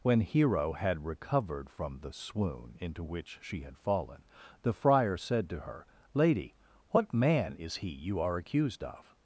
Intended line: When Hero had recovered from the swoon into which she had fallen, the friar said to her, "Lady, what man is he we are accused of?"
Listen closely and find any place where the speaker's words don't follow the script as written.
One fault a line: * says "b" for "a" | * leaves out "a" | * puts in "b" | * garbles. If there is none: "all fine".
* says "you" for "we"